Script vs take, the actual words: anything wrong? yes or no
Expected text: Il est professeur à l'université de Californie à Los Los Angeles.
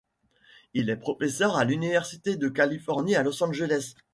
yes